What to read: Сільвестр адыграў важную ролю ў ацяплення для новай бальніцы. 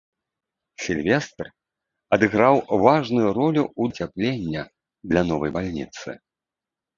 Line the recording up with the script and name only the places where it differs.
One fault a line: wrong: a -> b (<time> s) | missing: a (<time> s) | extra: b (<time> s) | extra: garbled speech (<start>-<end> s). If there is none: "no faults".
no faults